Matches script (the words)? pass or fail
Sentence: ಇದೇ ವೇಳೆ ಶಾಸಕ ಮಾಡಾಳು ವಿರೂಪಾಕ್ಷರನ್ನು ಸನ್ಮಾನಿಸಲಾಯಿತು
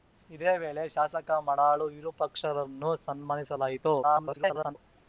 fail